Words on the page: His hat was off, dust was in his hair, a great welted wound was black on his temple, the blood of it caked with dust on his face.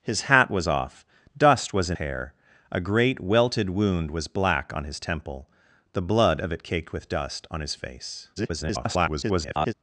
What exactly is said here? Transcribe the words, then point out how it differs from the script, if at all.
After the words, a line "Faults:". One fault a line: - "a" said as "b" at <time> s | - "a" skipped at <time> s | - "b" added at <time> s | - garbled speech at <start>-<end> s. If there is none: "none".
His hat was off, dust was in hair, a great welted wound was black on his temple, the blood of it caked with dust on his face. [garbled]
Faults:
- "his" skipped at 2.0 s
- garbled speech at 8.4-9.7 s